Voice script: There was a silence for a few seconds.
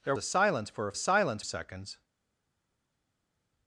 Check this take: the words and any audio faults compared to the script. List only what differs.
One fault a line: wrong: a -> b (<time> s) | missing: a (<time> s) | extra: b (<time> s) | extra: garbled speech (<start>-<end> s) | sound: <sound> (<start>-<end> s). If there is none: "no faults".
missing: was (0.1 s)
wrong: few -> silence (0.9 s)